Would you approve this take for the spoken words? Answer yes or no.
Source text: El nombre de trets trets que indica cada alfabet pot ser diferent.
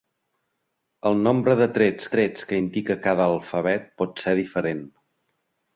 yes